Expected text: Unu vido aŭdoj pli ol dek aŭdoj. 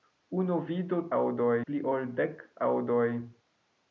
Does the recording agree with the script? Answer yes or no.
yes